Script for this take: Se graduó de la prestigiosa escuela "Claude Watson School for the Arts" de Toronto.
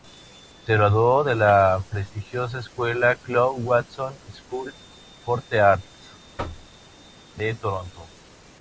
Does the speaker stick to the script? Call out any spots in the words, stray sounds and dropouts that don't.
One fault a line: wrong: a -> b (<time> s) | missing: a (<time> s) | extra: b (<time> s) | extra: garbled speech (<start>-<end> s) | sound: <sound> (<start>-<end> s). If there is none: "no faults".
sound: thud (6.4-6.7 s)